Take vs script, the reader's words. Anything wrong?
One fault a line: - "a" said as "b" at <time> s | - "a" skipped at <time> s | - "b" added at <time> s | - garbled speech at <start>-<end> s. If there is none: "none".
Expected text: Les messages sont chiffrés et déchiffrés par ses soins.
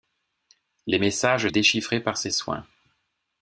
- "sont chiffrés et" skipped at 1.5 s